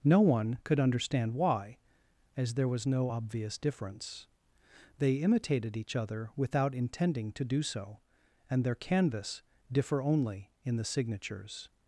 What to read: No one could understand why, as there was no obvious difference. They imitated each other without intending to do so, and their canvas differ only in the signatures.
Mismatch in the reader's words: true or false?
false